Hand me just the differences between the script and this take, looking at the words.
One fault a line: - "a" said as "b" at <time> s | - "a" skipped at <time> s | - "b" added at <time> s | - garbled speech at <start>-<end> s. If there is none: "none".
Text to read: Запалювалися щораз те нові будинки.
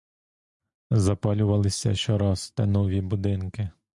none